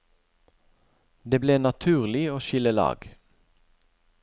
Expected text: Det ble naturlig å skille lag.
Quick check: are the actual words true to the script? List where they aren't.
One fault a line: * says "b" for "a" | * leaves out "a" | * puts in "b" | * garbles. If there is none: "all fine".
all fine